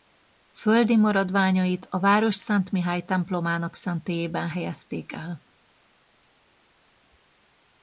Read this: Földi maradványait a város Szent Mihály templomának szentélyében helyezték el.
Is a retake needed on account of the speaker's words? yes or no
no